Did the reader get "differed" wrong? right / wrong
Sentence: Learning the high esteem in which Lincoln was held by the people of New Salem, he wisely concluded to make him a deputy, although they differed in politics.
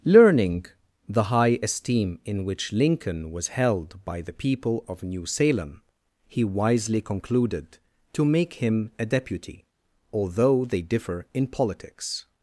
wrong